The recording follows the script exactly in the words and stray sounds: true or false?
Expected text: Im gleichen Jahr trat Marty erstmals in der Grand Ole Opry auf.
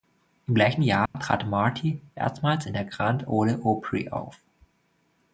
false